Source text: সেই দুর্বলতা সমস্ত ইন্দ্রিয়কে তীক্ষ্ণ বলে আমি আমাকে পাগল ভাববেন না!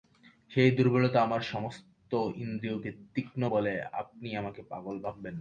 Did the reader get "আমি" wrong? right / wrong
wrong